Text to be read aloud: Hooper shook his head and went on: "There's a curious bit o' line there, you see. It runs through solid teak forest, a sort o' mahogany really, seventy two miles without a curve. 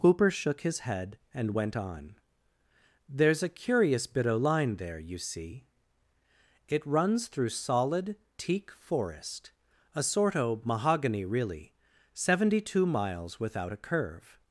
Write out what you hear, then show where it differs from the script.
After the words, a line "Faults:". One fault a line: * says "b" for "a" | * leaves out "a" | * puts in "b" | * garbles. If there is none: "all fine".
Hooper shook his head and went on: "There's a curious bit o' line there, you see. It runs through solid teak forest, a sort o' mahogany really, seventy two miles without a curve.
Faults:
all fine